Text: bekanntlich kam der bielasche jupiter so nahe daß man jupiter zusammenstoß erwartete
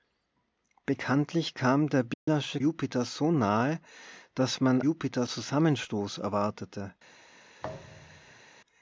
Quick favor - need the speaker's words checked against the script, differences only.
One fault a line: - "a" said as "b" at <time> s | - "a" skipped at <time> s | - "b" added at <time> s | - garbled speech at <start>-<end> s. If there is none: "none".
none